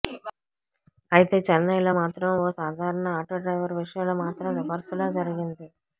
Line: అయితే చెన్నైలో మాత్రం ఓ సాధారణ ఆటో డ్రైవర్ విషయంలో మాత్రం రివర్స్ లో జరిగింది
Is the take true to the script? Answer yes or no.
yes